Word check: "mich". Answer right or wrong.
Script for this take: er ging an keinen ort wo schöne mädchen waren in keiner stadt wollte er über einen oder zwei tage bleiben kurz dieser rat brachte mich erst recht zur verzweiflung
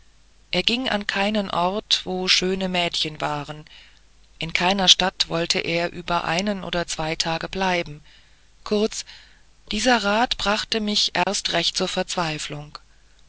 right